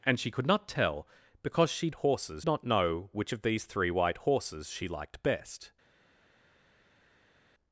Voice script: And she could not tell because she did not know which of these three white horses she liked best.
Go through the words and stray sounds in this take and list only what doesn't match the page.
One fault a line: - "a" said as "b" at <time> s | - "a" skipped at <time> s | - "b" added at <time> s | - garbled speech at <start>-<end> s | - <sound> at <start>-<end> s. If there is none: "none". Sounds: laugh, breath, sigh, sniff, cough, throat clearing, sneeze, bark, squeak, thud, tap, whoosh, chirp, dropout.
- "did" said as "horses" at 1.9 s